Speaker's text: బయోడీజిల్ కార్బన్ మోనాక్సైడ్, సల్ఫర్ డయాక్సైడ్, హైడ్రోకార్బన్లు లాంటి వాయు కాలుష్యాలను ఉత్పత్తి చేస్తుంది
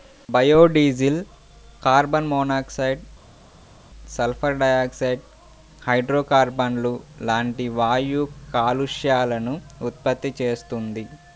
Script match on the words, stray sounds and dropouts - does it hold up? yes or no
yes